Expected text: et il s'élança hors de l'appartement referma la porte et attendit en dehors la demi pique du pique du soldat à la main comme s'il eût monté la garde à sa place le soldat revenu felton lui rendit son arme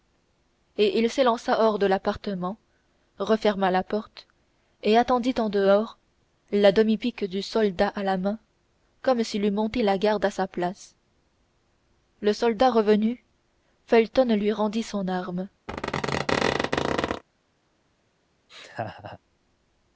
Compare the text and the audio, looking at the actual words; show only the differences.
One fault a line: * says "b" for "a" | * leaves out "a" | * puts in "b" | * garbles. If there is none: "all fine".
* leaves out "pique du"